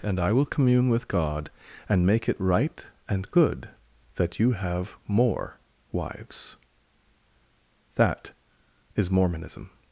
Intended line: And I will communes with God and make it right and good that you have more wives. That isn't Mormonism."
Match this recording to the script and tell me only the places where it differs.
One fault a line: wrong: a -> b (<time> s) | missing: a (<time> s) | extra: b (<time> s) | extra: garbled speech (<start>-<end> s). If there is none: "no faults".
wrong: communes -> commune (0.5 s)
wrong: isn't -> is (9.0 s)